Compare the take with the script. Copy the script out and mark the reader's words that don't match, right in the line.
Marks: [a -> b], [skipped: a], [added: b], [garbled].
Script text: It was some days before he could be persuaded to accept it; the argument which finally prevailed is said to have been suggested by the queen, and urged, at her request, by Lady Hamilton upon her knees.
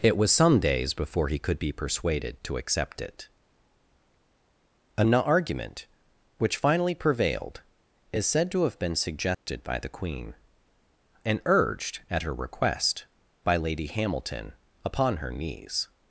It was some days before he could be persuaded to accept it; [the -> an] argument which finally prevailed is said to have been suggested by the queen, and urged, at her request, by Lady Hamilton upon her knees.